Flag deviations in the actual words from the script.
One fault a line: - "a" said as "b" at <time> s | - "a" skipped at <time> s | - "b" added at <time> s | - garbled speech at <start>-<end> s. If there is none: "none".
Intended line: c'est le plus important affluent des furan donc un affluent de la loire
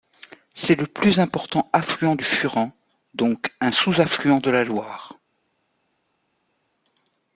- "des" said as "du" at 2.1 s
- "sous" added at 3.7 s